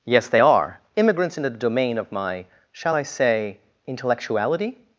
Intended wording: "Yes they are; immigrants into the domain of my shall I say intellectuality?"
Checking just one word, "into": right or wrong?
wrong